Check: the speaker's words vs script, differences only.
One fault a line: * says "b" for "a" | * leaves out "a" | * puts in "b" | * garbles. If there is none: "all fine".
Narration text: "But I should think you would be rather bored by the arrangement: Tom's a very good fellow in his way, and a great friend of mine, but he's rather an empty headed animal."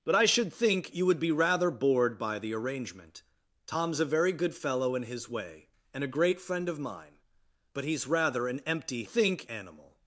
* says "think" for "headed"